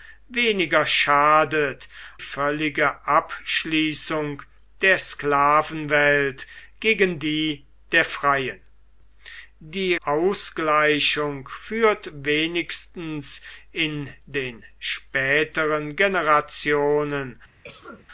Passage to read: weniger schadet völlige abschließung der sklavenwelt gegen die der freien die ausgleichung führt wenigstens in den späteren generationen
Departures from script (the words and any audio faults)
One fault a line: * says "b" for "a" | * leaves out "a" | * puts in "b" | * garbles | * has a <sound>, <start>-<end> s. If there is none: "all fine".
* has a cough, 17.6-18.1 s